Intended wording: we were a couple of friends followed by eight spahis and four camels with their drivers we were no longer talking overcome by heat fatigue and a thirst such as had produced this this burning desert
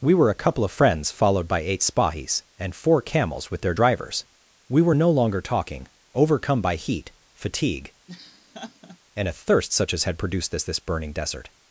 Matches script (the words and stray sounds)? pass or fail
fail